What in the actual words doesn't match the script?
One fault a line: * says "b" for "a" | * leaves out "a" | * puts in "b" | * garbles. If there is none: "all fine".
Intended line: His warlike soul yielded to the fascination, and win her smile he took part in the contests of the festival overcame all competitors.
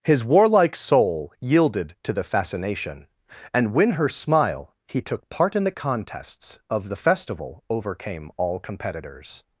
all fine